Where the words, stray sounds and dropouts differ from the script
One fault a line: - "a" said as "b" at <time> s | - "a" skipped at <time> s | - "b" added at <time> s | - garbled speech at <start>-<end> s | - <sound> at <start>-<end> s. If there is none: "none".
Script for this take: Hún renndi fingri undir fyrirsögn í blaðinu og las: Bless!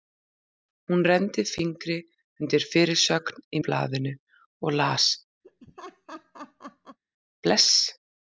- laugh at 5.4-7.0 s